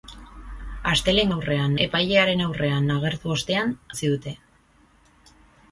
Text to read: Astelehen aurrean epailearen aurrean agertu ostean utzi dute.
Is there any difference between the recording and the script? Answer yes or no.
no